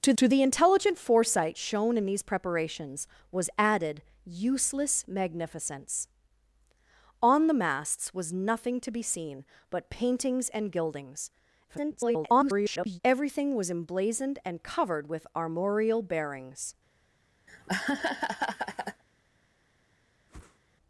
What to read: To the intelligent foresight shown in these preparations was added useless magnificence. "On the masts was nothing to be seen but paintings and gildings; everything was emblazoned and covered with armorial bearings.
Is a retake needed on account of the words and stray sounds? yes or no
yes